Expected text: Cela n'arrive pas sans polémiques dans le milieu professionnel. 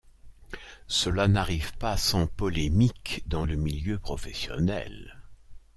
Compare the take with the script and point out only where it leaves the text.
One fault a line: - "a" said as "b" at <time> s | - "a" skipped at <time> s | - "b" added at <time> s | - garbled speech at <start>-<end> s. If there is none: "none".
none